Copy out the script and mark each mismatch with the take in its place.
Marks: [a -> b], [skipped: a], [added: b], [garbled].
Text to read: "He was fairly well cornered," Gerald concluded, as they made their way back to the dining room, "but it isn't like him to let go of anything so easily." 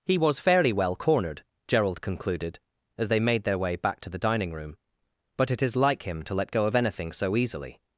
"He was fairly well cornered," Gerald concluded, as they made their way back to the dining room, "but it [isn't -> is] like him to let go of anything so easily."